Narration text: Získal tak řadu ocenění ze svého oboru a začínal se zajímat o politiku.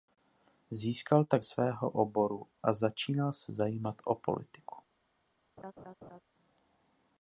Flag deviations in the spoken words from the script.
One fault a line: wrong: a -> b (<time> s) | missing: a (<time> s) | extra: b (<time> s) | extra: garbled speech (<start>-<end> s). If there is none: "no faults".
missing: řadu ocenění ze (1.4 s)